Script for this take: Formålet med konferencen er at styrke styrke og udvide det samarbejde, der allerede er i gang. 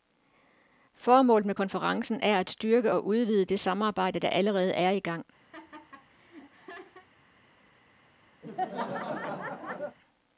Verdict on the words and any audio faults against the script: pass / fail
fail